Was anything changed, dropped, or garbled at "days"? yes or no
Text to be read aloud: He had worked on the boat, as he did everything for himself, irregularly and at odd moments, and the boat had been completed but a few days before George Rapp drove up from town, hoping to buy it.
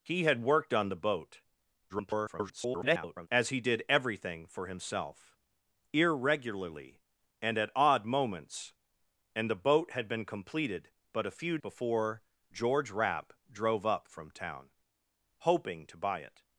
yes